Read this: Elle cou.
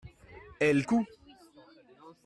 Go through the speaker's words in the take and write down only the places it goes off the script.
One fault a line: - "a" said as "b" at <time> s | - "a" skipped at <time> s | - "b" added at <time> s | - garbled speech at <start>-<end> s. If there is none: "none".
none